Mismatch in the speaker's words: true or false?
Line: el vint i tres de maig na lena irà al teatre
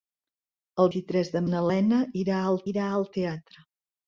true